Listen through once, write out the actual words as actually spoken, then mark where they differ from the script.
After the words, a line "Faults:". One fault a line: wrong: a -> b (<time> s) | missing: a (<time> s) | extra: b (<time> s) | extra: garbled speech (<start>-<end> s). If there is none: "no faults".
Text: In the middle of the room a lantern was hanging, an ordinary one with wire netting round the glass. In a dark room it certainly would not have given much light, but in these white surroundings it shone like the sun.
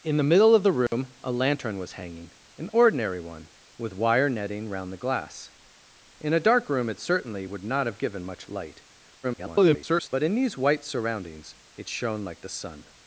In the middle of the room a lantern was hanging, an ordinary one with wire netting round the glass. In a dark room it certainly would not have given much light, [garbled] but in these white surroundings it shone like the sun.
Faults:
extra: garbled speech (9.2-10.1 s)